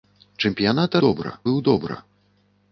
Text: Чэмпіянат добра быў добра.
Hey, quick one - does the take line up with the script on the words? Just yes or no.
yes